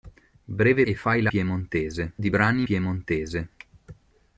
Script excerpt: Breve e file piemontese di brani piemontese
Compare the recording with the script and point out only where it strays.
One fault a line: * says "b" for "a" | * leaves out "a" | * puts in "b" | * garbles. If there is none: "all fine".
all fine